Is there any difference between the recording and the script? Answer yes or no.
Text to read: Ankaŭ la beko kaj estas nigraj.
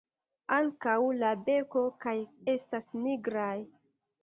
no